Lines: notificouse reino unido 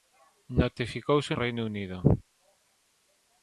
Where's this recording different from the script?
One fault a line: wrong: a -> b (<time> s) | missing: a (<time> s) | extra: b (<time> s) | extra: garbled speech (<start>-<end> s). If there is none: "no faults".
no faults